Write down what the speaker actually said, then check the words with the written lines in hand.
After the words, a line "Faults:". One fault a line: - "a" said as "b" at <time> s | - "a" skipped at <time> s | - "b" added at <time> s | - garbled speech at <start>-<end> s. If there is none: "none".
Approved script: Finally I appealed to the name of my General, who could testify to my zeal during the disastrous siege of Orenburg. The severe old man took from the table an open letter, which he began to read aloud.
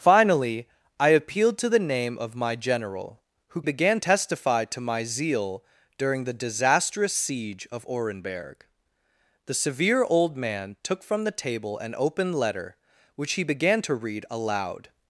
Finally I appealed to the name of my General, who began testify to my zeal during the disastrous siege of Orenburg. The severe old man took from the table an open letter, which he began to read aloud.
Faults:
- "could" said as "began" at 3.6 s